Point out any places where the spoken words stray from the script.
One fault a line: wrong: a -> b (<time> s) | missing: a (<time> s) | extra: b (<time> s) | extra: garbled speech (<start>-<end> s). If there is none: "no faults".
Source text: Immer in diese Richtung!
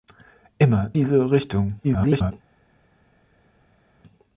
missing: in (0.9 s)
extra: garbled speech (1.8-2.3 s)